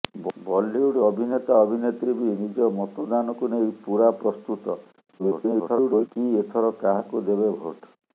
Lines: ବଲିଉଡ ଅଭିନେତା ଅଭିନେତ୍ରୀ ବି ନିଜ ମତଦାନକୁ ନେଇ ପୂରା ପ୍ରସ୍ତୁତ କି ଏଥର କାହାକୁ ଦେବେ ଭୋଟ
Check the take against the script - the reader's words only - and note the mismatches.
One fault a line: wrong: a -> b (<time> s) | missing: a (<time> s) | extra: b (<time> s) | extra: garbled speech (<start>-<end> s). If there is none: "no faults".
extra: garbled speech (5.2-6.1 s)